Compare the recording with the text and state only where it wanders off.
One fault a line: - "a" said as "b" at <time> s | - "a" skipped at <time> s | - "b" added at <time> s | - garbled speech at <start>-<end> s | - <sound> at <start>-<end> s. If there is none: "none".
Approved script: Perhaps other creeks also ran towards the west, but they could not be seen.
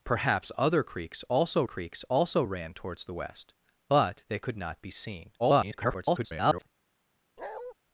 - "creeks also" added at 1.6 s
- garbled speech at 5.4-6.7 s
- bark at 7.4-7.7 s